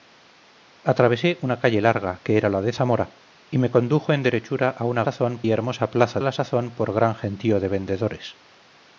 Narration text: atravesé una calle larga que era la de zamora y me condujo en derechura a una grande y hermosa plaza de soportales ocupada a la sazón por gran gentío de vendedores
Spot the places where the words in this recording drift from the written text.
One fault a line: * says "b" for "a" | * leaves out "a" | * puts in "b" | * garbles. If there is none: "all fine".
* says "sazón" for "grande"
* leaves out "de soportales ocupada"